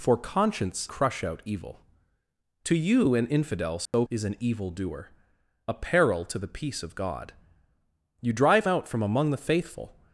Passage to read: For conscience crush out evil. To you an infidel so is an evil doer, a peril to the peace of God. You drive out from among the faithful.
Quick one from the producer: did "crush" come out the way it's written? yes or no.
yes